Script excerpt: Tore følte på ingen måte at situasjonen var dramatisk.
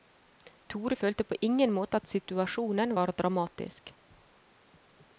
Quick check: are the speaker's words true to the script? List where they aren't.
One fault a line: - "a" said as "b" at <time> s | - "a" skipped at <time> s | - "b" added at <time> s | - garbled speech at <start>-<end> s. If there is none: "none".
none